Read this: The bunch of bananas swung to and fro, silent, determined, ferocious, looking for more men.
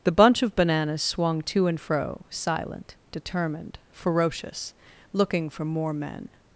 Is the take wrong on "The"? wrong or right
right